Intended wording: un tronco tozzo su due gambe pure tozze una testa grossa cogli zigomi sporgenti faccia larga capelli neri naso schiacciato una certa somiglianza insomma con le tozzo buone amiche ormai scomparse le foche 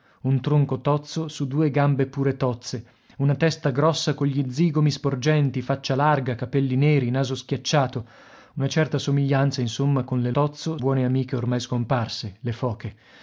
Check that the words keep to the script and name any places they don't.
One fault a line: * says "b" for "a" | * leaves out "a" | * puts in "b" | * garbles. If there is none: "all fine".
all fine